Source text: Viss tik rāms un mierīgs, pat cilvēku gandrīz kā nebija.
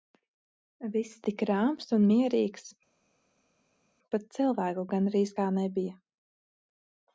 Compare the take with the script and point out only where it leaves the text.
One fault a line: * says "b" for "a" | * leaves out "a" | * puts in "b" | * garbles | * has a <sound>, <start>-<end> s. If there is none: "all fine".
all fine